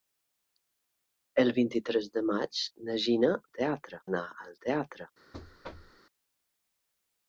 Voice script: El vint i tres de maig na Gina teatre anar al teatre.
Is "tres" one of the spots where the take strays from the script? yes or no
no